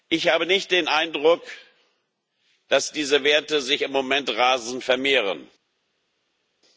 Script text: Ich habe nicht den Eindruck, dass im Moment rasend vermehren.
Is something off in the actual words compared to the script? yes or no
yes